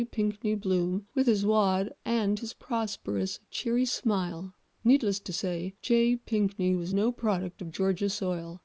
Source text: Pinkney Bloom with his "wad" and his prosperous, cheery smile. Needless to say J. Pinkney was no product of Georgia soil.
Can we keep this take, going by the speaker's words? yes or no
yes